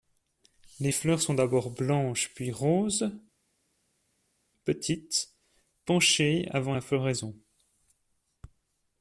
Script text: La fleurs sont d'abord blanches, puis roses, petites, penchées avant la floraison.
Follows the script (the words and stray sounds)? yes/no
no